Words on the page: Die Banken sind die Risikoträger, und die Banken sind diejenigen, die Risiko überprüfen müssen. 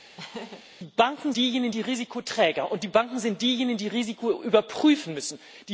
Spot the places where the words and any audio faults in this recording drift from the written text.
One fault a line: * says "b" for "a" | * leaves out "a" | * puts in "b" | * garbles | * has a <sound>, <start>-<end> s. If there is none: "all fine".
* has a laugh, 0.2-0.6 s
* says "diejenigen" for "sind"